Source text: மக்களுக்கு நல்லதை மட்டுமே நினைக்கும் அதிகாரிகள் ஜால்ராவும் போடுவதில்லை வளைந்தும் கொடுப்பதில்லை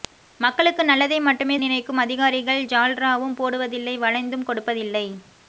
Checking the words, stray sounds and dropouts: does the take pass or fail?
pass